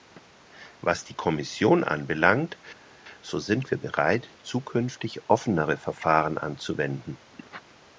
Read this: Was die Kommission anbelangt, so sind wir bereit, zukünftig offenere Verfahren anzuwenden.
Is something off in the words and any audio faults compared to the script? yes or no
no